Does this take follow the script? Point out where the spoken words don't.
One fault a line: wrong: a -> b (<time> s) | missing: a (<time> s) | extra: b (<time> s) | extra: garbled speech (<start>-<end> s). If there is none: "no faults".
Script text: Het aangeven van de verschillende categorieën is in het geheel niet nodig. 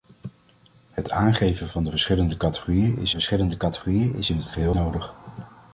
extra: verschillende categorieën is (3.1 s)
missing: niet (4.8 s)